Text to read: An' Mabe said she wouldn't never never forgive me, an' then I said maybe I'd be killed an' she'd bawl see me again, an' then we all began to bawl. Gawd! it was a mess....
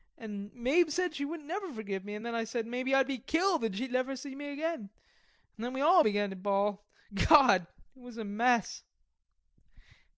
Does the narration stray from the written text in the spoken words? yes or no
yes